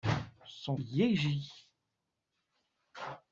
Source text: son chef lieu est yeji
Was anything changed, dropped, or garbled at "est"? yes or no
yes